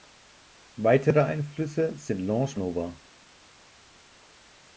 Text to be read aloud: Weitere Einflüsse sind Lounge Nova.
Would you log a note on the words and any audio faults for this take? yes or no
no